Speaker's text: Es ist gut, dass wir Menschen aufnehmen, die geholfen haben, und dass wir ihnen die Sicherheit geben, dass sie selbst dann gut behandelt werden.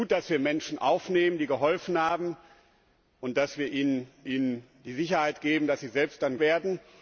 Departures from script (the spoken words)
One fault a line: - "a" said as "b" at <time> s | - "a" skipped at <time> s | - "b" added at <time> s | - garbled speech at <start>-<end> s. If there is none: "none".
- "ihnen" added at 4.3 s
- "gut behandelt" skipped at 6.4 s